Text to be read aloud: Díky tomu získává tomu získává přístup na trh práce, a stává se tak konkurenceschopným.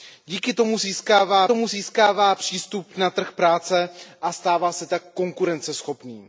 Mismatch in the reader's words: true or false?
false